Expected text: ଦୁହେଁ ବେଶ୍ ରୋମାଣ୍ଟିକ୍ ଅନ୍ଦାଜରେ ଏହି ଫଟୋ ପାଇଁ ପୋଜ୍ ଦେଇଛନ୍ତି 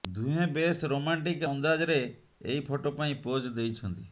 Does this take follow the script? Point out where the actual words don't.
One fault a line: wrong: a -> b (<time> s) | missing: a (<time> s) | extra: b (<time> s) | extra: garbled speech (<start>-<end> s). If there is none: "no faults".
no faults